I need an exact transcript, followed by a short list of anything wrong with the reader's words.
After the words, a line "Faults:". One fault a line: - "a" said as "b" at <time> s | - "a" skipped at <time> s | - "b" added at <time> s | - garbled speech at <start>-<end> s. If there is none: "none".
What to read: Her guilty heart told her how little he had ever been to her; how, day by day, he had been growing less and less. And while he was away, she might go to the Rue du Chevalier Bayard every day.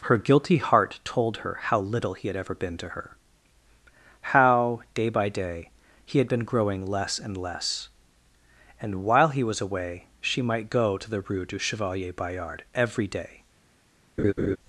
Her guilty heart told her how little he had ever been to her; how, day by day, he had been growing less and less. And while he was away, she might go to the Rue du Chevalier Bayard every day.
Faults:
none